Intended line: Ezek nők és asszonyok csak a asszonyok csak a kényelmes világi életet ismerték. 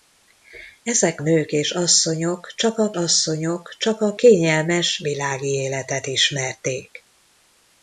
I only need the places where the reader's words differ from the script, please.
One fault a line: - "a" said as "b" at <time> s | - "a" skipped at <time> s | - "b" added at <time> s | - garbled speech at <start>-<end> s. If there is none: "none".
none